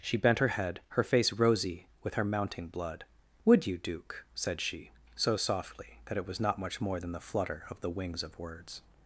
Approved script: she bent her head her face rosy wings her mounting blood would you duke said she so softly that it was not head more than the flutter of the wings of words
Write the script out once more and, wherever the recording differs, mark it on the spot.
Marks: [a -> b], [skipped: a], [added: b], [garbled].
she bent her head her face rosy [wings -> with] her mounting blood would you duke said she so softly that it was not [head -> much] more than the flutter of the wings of words